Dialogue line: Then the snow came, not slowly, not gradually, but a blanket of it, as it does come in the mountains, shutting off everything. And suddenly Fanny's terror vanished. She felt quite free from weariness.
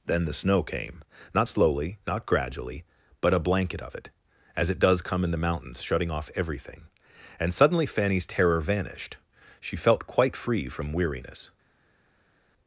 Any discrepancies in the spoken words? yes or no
no